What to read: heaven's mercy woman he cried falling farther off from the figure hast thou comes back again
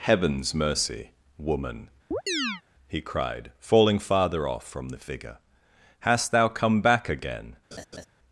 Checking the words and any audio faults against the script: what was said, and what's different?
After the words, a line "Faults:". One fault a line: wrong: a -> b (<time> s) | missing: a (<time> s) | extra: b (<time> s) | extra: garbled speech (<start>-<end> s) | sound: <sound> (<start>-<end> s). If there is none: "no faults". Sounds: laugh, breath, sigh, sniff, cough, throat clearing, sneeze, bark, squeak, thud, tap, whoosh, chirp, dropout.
heaven's mercy woman he cried falling farther off from the figure hast thou come back again
Faults:
sound: chirp (2.1-2.6 s)
wrong: comes -> come (6.5 s)
sound: laugh (7.7-8.1 s)